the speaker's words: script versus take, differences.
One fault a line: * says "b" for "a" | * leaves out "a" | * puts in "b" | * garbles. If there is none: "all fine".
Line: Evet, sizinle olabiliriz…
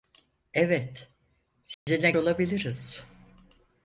all fine